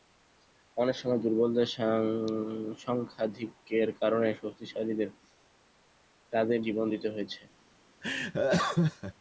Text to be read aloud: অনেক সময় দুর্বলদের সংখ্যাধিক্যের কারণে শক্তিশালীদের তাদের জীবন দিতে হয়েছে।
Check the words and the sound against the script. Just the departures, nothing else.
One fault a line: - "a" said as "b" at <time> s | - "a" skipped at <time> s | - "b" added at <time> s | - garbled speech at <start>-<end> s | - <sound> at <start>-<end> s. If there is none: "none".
- laugh at 8.0-9.1 s